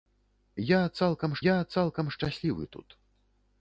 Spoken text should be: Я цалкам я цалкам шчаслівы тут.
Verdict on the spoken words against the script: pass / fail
pass